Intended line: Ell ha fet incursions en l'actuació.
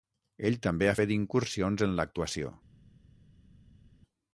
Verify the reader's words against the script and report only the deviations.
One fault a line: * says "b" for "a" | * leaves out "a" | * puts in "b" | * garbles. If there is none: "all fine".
* puts in "també"